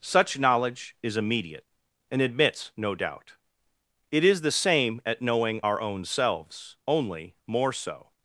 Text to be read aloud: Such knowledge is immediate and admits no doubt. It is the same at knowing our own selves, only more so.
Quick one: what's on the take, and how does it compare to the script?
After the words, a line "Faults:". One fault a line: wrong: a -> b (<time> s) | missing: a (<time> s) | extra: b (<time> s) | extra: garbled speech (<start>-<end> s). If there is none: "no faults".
Such knowledge is immediate and admits no doubt. It is the same at knowing our own selves, only more so.
Faults:
no faults